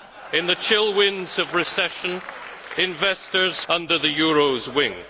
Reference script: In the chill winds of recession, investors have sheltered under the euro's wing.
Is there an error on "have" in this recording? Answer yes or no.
yes